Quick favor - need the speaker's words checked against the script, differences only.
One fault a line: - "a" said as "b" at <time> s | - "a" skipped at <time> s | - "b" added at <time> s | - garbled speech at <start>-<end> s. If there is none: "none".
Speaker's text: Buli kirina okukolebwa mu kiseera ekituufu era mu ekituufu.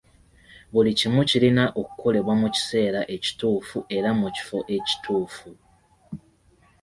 - "kimu" added at 1.0 s
- "kifo" added at 4.4 s